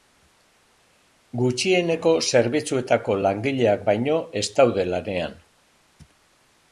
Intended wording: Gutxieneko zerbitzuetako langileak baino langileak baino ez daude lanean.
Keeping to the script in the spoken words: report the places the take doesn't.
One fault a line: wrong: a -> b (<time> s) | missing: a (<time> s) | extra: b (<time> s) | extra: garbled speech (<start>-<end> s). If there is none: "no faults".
missing: langileak baino (4.2 s)